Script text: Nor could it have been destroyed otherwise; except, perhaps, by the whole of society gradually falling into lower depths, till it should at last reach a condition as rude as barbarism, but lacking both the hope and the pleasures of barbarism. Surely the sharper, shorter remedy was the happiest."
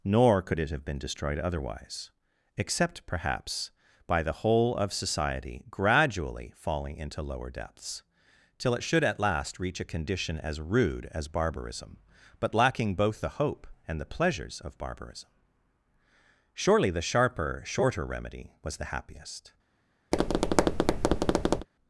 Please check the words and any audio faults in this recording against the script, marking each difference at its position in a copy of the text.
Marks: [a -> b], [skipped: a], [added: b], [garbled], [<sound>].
Nor could it have been destroyed otherwise; except, perhaps, by the whole of society gradually falling into lower depths, till it should at last reach a condition as rude as barbarism, but lacking both the hope and the pleasures of barbarism. Surely the sharper, shorter remedy was the happiest." [tap]